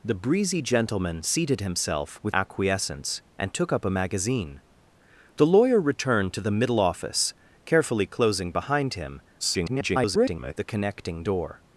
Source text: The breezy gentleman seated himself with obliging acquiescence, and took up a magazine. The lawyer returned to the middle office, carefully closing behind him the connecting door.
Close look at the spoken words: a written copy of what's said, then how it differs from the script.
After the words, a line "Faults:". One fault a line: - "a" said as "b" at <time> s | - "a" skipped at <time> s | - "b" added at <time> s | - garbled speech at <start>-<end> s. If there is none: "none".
The breezy gentleman seated himself with acquiescence, and took up a magazine. The lawyer returned to the middle office, carefully closing behind him [garbled] the connecting door.
Faults:
- "obliging" skipped at 2.4 s
- garbled speech at 9.4-10.5 s